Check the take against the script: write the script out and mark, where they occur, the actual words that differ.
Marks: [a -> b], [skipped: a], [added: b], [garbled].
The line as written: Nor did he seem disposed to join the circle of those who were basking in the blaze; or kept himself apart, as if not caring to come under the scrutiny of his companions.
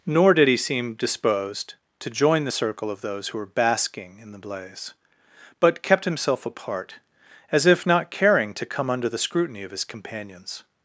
Nor did he seem disposed to join the circle of those who were basking in the blaze; [or -> but] kept himself apart, as if not caring to come under the scrutiny of his companions.